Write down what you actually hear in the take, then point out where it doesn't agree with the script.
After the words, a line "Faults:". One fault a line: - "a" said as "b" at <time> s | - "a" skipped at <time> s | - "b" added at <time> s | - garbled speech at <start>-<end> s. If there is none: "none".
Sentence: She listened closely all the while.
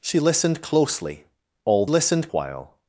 She listened closely all listened while.
Faults:
- "the" said as "listened" at 1.9 s